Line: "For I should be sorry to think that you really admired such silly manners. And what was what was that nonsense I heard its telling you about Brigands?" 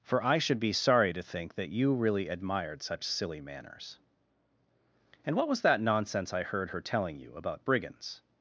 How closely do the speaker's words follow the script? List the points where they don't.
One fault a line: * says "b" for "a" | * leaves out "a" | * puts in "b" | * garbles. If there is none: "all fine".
* leaves out "what was"
* says "her" for "its"